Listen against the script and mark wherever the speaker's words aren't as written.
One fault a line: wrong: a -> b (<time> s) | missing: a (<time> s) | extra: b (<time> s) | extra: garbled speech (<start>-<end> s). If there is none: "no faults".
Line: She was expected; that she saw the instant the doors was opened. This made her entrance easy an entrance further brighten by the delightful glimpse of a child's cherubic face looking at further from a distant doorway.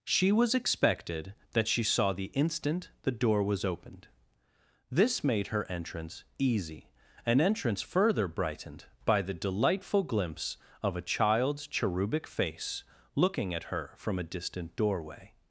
wrong: doors -> door (3.1 s)
wrong: brighten -> brightened (8.3 s)
wrong: further -> her (13.7 s)